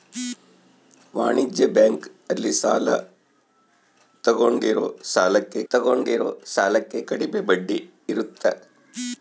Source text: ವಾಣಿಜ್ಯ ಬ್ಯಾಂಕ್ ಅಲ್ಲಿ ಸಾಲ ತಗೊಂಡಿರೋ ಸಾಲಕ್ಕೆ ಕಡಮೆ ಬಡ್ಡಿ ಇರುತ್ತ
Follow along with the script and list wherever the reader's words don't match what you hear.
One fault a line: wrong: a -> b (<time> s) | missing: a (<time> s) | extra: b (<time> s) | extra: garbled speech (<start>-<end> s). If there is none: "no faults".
extra: ತಗೊಂಡಿರೋ ಸಾಲಕ್ಕೆ (5.7 s)